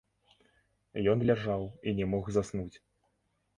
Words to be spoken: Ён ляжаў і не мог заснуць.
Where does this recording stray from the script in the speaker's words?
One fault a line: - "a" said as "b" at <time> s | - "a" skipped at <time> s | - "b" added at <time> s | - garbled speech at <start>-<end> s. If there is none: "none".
none